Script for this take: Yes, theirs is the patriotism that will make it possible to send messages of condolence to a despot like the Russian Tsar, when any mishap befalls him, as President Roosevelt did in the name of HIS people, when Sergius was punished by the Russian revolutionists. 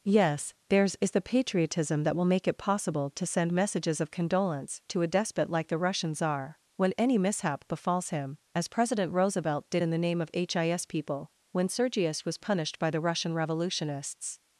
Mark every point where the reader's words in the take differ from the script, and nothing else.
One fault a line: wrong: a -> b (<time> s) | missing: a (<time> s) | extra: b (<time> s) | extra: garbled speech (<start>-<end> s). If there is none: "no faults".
no faults